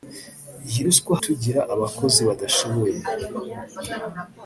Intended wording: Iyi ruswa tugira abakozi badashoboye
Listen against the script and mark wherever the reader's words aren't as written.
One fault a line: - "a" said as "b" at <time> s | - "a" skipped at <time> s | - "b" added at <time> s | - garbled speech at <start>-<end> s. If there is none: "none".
none